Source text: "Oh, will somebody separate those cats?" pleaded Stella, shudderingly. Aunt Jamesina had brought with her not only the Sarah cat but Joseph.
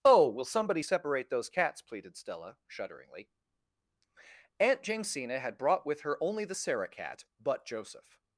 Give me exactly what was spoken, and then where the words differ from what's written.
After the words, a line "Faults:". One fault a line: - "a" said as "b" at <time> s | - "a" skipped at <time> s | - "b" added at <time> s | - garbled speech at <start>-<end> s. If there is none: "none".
"Oh, will somebody separate those cats?" pleaded Stella, shudderingly. Aunt Jamesina had brought with her only the Sarah cat but Joseph.
Faults:
- "not" skipped at 6.2 s